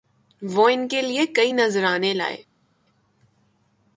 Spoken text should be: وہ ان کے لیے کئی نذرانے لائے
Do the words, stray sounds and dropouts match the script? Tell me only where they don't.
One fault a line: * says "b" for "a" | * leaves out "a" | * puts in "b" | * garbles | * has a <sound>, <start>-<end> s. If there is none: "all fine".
all fine